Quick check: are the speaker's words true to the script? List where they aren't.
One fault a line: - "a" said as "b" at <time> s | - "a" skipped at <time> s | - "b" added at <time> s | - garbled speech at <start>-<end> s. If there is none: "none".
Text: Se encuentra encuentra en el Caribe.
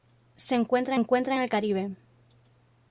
none